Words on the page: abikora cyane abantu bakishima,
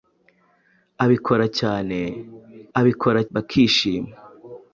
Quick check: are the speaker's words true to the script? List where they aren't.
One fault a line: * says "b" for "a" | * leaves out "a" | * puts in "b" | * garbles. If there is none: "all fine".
* says "abikora" for "abantu"